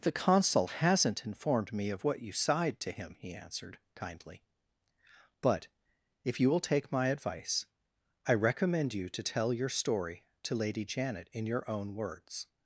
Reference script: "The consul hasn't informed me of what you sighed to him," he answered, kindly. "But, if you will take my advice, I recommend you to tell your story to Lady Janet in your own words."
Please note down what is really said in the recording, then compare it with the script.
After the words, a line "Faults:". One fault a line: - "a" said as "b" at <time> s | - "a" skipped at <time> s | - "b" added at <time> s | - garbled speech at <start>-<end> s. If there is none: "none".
"The consul hasn't informed me of what you sighed to him," he answered, kindly. "But, if you will take my advice, I recommend you to tell your story to Lady Janet in your own words."
Faults:
none